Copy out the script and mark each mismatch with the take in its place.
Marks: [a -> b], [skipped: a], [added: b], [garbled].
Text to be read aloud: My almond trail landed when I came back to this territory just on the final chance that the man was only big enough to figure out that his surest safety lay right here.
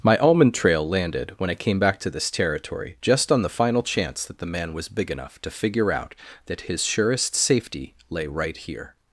My almond trail landed when I came back to this territory just on the final chance that the man was [skipped: only] big enough to figure out that his surest safety lay right here.